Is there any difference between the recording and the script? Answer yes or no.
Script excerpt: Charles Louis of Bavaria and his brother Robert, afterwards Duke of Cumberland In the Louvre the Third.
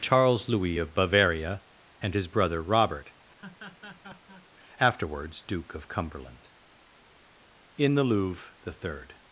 no